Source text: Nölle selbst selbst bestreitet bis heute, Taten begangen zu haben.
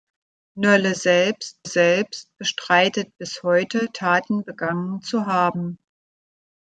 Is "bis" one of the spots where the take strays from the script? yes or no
no